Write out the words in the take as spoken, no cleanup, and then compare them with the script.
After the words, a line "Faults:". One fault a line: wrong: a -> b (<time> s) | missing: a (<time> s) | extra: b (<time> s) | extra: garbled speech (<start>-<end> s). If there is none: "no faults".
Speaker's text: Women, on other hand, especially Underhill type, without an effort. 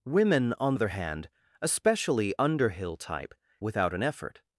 Women, on other hand, especially Underhill type, without an effort.
Faults:
no faults